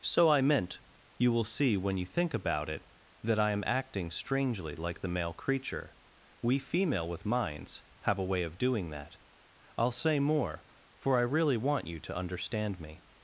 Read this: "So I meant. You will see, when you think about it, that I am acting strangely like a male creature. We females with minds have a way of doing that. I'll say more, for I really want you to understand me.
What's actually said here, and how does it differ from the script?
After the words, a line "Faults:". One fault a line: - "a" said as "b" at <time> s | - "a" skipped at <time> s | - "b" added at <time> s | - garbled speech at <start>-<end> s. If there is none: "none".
"So I meant. You will see, when you think about it, that I am acting strangely like the male creature. We female with minds have a way of doing that. I'll say more, for I really want you to understand me.
Faults:
- "a" said as "the" at 5.0 s
- "females" said as "female" at 6.6 s